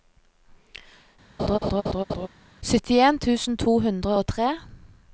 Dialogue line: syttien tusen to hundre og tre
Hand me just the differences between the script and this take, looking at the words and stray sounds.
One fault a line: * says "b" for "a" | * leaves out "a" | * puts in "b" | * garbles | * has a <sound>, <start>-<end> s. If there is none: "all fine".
* has a laugh, 1.4-2.3 s